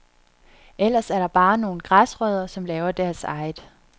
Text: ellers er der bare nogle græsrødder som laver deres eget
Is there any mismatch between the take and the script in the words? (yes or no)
no